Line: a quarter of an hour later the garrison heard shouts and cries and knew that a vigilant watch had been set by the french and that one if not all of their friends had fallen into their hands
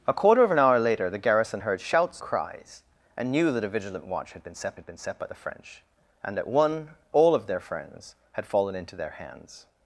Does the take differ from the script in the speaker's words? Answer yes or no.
yes